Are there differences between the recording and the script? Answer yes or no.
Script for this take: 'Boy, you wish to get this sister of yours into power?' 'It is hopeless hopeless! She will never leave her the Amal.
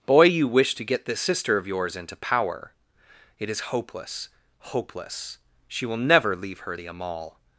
no